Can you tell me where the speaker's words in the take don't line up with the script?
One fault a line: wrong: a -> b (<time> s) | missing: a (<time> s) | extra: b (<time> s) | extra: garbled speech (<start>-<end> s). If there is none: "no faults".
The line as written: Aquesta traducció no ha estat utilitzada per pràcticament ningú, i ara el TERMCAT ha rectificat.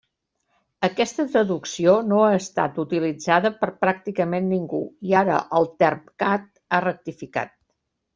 no faults